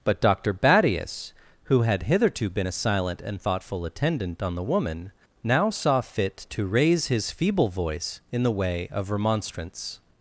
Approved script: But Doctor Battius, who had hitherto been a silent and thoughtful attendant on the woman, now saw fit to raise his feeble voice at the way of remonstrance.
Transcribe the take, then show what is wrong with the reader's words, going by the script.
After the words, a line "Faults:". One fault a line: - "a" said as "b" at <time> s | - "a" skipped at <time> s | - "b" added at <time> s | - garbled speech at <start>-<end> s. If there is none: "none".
But Doctor Battius, who had hitherto been a silent and thoughtful attendant on the woman, now saw fit to raise his feeble voice in the way of remonstrance.
Faults:
- "at" said as "in" at 8.3 s